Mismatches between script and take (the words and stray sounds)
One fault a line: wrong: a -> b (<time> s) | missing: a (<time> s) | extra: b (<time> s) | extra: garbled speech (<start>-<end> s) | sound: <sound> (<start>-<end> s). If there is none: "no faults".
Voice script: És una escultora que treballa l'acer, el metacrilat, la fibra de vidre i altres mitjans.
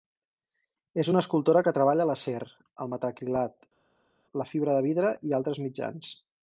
no faults